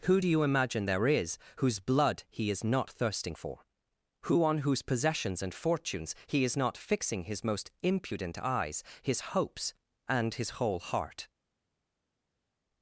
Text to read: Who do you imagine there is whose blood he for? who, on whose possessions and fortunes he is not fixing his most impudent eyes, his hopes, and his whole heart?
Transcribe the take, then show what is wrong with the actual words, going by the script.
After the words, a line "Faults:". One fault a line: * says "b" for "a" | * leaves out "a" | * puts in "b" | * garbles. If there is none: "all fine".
Who do you imagine there is whose blood he is not thirsting for? who, on whose possessions and fortunes he is not fixing his most impudent eyes, his hopes, and his whole heart?
Faults:
* puts in "is not thirsting"